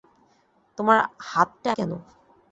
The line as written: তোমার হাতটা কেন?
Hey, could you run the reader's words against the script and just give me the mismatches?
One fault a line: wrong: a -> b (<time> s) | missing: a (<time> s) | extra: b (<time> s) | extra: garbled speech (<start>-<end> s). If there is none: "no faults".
no faults